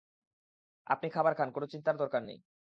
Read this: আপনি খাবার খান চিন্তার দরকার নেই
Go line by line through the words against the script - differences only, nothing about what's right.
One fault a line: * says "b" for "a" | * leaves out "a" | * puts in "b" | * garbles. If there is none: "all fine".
* puts in "কোনো"